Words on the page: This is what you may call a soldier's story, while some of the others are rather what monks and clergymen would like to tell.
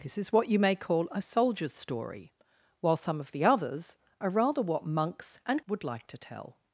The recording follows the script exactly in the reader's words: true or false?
false